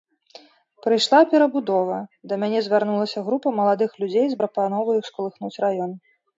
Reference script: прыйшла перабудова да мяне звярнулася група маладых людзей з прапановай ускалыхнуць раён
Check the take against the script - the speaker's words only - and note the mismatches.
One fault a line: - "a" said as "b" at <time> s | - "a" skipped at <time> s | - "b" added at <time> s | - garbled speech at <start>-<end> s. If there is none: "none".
none